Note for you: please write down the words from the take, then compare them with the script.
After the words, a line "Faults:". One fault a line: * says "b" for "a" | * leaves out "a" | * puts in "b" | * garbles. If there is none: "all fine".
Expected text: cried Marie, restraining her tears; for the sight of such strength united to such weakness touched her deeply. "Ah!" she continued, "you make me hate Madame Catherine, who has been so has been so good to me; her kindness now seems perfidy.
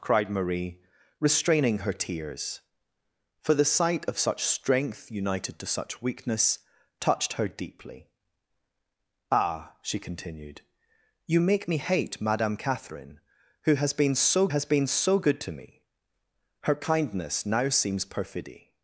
cried Marie, restraining her tears; for the sight of such strength united to such weakness touched her deeply. "Ah!" she continued, "you make me hate Madame Catherine, who has been so has been so good to me; her kindness now seems perfidy.
Faults:
all fine